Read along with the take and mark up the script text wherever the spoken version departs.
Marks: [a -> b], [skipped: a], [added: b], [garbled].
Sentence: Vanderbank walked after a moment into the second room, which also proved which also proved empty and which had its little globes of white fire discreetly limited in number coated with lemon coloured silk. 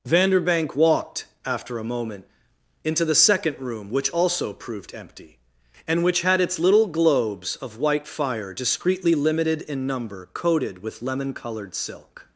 Vanderbank walked after a moment into the second room, which also proved [skipped: which also proved] empty and which had its little globes of white fire discreetly limited in number coated with lemon coloured silk.